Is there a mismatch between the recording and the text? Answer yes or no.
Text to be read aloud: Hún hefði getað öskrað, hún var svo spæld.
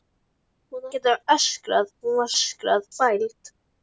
yes